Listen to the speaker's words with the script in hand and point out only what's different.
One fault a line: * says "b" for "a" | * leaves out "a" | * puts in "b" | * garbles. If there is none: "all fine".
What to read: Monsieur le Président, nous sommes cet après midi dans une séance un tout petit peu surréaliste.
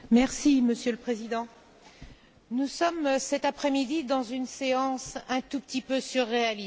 all fine